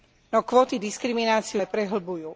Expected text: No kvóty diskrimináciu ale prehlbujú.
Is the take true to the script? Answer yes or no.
yes